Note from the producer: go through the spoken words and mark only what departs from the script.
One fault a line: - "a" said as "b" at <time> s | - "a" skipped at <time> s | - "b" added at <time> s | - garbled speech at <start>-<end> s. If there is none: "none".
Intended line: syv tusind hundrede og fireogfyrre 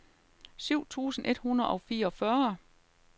- "et" added at 1.3 s